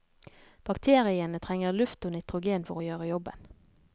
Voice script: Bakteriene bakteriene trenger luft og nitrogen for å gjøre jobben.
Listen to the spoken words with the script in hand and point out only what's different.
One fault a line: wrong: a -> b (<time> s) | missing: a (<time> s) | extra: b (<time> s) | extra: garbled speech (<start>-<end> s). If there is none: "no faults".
missing: bakteriene (1.4 s)